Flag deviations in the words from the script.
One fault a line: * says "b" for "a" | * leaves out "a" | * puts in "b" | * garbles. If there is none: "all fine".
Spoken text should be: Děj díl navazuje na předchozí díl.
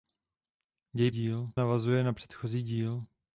all fine